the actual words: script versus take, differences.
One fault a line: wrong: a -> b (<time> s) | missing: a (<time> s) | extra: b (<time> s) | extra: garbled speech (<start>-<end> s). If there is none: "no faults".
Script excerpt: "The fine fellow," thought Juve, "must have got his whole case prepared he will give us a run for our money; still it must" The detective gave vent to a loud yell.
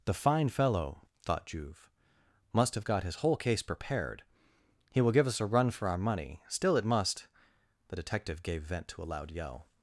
no faults